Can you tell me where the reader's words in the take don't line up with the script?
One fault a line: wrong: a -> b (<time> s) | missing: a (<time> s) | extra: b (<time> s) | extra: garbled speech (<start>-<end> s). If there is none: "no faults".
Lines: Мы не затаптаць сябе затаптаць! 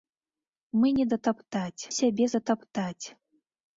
no faults